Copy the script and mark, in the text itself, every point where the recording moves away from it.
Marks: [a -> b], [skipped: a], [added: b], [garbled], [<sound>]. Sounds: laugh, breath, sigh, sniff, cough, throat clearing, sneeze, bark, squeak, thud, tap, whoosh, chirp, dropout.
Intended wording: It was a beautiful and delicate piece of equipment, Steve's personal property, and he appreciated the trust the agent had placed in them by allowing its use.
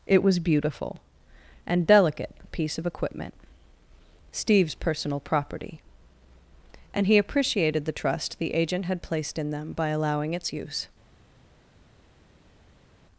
It was [skipped: a] beautiful and delicate piece of equipment, Steve's personal property, and he appreciated the trust the agent had placed in them by allowing its use.